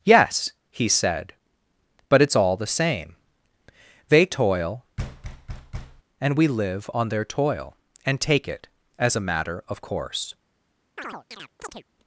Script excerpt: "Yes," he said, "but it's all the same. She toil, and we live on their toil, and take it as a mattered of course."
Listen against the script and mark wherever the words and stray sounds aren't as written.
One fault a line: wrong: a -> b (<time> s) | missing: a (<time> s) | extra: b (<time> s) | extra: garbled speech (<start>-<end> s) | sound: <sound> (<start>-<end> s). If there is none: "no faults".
wrong: She -> They (4.1 s)
sound: thud (5.0-6.0 s)
wrong: mattered -> matter (9.3 s)
sound: chirp (11.0-11.8 s)